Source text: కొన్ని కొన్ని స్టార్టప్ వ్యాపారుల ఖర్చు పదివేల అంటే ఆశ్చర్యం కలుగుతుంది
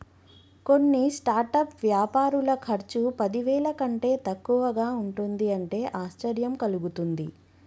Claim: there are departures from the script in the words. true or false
true